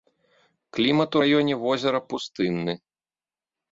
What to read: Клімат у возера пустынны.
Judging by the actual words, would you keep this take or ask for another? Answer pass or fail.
fail